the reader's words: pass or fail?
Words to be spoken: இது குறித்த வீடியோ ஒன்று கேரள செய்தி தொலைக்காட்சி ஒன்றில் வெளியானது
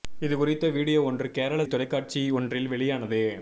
fail